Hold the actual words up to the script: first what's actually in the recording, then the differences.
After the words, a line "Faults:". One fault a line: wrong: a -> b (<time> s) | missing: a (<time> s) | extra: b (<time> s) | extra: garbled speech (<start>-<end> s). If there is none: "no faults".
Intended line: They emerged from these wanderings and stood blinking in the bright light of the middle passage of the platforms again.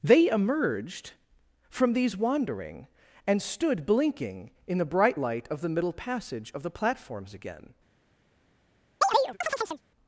They emerged from these wandering and stood blinking in the bright light of the middle passage of the platforms again.
Faults:
wrong: wanderings -> wandering (2.2 s)